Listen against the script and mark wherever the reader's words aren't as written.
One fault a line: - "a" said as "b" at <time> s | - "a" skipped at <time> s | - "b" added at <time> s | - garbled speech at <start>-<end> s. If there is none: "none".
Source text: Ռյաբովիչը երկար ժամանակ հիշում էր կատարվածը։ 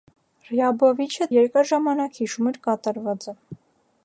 none